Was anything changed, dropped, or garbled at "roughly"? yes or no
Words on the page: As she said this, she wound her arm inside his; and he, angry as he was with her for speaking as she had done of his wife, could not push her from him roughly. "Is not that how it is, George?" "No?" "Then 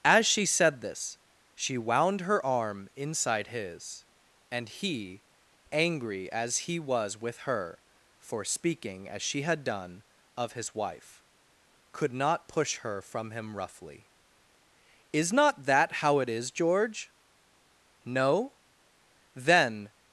no